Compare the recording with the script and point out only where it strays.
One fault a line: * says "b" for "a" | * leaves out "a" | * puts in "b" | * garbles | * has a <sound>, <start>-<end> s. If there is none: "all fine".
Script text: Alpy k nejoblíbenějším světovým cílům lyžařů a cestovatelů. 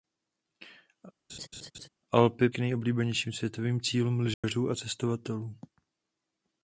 * has a laugh, 1.3-1.9 s
* has a dropout, 4.3-4.4 s